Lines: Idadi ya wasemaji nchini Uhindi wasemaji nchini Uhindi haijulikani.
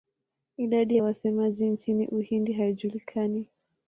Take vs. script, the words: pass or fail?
fail